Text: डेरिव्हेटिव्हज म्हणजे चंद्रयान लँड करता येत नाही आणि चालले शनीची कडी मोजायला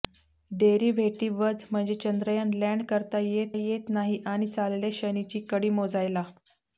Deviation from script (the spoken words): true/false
true